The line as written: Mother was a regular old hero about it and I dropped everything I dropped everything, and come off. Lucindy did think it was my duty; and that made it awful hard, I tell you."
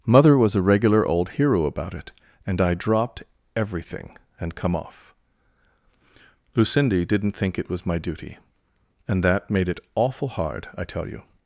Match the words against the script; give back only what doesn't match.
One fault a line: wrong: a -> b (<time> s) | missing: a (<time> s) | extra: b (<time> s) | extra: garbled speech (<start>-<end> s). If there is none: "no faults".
missing: I dropped everything (4.2 s)
wrong: did -> didn't (7.0 s)